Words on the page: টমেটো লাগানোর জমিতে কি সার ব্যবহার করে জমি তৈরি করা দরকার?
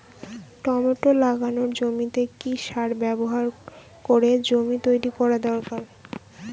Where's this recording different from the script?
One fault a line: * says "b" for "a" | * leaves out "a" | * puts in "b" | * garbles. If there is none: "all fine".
all fine